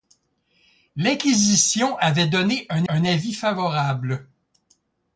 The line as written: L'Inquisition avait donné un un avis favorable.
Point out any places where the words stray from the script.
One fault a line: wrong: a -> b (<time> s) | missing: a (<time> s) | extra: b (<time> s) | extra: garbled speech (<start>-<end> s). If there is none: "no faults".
no faults